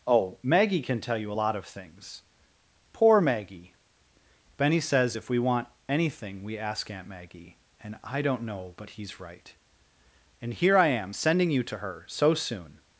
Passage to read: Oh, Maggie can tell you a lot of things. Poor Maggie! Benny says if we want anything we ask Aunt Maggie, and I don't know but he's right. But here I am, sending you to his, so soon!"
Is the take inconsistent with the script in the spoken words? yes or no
yes